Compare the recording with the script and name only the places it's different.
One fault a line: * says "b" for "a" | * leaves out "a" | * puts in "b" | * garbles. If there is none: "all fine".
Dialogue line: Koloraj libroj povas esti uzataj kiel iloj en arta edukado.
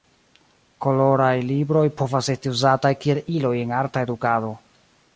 all fine